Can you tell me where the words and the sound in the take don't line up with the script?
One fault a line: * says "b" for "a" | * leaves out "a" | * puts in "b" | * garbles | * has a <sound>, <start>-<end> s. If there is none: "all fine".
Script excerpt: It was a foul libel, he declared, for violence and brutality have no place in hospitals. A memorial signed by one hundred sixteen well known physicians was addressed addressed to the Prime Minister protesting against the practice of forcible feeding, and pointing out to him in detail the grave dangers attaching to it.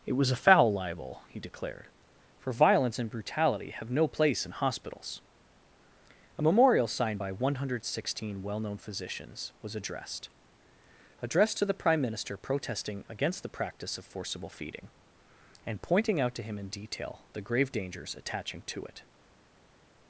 all fine